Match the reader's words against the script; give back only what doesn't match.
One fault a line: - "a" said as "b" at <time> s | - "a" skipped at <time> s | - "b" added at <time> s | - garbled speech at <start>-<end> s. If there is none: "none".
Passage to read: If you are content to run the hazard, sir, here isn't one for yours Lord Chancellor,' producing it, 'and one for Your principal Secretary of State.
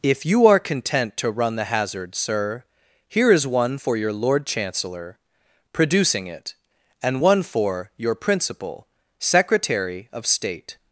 - "isn't" said as "is" at 3.3 s
- "yours" said as "your" at 4.0 s